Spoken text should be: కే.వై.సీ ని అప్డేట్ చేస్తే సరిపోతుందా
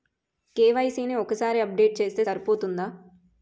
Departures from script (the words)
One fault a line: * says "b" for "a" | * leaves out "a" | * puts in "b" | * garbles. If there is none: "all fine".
* puts in "ఒక్కసారి"